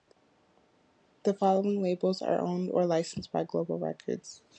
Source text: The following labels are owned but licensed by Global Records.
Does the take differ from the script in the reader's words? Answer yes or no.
yes